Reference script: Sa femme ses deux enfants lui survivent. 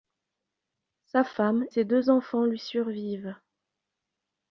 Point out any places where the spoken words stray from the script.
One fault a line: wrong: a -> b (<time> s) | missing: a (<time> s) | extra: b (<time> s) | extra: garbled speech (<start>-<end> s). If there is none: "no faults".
no faults